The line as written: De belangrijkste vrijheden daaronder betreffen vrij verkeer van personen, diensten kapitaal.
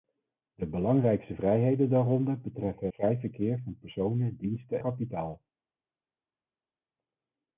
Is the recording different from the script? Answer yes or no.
no